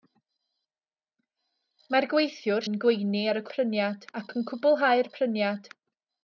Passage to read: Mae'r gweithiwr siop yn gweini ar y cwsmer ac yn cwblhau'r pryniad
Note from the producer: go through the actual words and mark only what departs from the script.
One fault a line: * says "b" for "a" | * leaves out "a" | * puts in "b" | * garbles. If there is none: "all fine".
* leaves out "siop"
* says "pryniad" for "cwsmer"